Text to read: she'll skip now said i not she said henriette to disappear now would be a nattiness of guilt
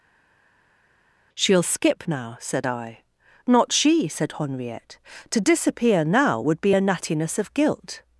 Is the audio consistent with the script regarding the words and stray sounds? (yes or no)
yes